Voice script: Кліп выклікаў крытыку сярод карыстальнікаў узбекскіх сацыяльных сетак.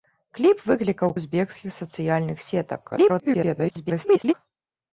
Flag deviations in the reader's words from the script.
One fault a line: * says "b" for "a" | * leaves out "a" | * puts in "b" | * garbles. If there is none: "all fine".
* leaves out "крытыку сярод карыстальнікаў"
* garbles